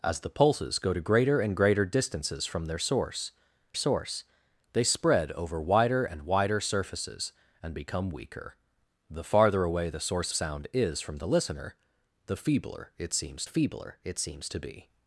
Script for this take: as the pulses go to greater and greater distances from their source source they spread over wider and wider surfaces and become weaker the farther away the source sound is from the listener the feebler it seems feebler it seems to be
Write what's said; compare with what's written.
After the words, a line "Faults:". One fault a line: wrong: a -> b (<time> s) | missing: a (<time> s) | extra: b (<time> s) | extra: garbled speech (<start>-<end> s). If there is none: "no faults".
as the pulses go to greater and greater distances from their source source they spread over wider and wider surfaces and become weaker the farther away the source sound is from the listener the feebler it seems feebler it seems to be
Faults:
no faults